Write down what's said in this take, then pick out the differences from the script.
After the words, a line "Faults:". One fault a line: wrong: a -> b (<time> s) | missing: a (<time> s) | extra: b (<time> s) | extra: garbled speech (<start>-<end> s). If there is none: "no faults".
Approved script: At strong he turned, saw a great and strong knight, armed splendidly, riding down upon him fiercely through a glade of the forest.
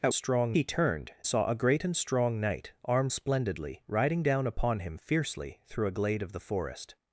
At strong he turned, saw a great and strong knight, armed splendidly, riding down upon him fiercely through a glade of the forest.
Faults:
no faults